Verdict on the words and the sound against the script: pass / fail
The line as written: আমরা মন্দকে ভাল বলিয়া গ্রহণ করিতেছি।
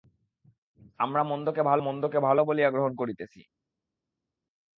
fail